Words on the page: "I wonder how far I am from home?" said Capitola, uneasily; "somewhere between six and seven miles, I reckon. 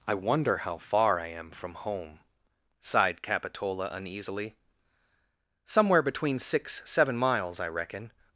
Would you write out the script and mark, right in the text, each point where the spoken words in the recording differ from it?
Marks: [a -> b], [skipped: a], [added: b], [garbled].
"I wonder how far I am from home?" [said -> sighed] Capitola, uneasily; "somewhere between six [skipped: and] seven miles, I reckon.